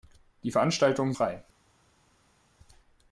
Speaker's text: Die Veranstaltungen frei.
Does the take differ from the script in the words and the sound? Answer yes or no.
no